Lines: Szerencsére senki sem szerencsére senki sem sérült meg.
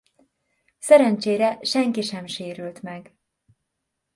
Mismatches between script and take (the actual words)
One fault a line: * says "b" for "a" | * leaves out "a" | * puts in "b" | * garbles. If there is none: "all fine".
* leaves out "szerencsére senki sem"